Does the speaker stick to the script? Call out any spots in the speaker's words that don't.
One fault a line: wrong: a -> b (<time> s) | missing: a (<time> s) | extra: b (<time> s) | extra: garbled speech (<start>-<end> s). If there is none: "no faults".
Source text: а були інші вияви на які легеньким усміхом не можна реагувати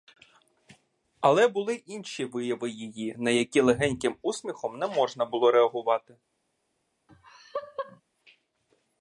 wrong: а -> але (1.2 s)
extra: її (2.7 s)
extra: було (5.3 s)